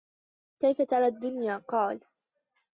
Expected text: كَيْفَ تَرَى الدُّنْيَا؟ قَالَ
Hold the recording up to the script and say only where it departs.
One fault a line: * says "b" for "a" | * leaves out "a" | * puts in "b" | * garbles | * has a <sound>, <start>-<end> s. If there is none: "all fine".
all fine